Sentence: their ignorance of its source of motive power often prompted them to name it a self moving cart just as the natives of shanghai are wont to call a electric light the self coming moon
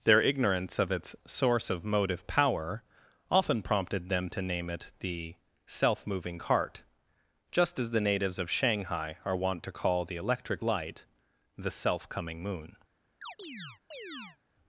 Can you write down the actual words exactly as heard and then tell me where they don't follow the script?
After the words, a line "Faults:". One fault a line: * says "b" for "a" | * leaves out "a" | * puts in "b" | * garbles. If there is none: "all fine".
their ignorance of its source of motive power often prompted them to name it the self moving cart just as the natives of shanghai are wont to call the electric light the self coming moon
Faults:
* says "the" for "a"
* says "the" for "a"